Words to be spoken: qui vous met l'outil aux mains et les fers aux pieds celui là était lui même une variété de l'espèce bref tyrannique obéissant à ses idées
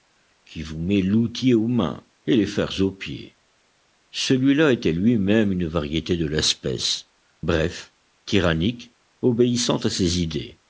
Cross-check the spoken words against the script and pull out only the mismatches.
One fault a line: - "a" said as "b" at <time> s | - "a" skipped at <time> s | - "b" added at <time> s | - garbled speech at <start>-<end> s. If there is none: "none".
none